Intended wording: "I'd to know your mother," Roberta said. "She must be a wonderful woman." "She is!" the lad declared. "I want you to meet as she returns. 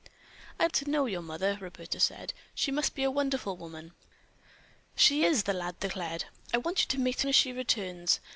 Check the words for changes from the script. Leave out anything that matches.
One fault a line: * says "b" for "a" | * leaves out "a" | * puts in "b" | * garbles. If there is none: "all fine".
all fine